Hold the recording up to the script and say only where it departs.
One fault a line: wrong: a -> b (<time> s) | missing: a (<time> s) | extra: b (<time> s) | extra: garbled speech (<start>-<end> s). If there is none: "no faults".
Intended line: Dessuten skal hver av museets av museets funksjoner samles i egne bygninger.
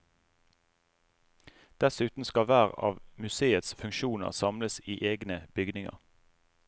missing: av museets (3.8 s)